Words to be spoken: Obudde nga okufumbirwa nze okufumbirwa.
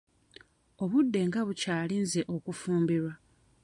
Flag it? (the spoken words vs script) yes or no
yes